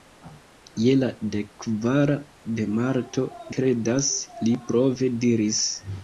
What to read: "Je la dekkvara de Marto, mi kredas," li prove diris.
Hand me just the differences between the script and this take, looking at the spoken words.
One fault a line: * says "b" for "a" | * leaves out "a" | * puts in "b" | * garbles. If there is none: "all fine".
* leaves out "mi"